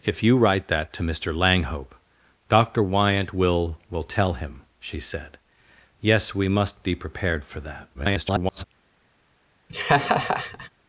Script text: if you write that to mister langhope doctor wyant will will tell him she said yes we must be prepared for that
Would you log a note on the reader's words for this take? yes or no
yes